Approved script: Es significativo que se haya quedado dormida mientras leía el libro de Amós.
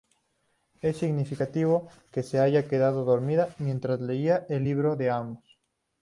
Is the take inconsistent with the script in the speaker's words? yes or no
no